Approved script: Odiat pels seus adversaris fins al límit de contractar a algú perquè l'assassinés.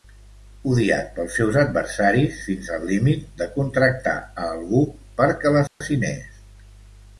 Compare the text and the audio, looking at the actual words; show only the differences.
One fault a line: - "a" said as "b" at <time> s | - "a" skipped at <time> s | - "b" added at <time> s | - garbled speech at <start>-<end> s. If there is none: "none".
none